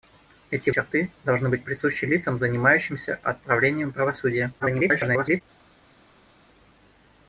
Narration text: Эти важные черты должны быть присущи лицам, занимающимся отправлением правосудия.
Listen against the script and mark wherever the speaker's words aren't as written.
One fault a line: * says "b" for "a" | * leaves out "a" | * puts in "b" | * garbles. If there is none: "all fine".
* leaves out "важные"
* garbles